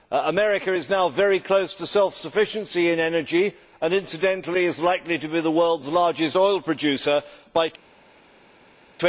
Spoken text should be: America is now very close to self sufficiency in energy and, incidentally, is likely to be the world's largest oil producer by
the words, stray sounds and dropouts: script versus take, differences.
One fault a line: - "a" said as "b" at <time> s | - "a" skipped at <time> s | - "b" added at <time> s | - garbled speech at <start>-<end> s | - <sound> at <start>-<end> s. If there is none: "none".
none